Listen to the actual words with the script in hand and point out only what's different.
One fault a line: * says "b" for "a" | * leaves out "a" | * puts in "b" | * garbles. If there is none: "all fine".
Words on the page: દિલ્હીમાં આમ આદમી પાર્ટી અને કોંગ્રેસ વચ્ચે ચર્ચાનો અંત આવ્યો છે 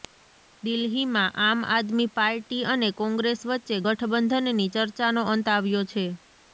* puts in "ગઠબંધનની"